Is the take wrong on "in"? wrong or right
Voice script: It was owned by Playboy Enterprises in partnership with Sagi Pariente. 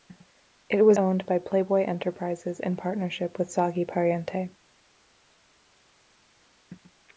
right